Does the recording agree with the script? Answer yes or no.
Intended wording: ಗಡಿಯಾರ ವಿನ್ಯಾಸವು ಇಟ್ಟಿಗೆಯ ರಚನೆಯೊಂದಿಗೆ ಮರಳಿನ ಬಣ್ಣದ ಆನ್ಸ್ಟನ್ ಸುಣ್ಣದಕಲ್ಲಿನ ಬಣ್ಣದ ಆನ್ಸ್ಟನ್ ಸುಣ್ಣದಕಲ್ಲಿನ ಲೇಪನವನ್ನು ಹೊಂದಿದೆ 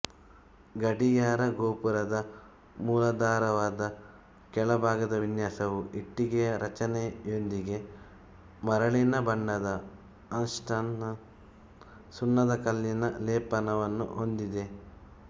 no